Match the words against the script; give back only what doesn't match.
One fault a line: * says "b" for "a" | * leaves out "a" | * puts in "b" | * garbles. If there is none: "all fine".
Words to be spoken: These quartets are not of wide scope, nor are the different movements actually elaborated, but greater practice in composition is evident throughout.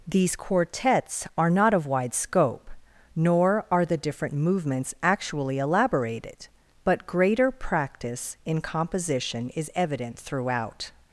all fine